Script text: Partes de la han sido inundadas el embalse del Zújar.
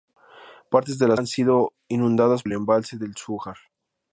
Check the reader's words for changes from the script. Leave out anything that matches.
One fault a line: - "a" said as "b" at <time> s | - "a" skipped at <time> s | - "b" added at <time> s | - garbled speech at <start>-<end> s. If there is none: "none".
none